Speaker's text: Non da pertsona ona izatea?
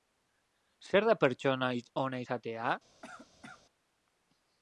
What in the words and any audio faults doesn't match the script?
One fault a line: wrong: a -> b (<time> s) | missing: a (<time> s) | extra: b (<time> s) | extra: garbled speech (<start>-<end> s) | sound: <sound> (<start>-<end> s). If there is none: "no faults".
wrong: Non -> Zer (0.9 s)
sound: cough (3.0-3.6 s)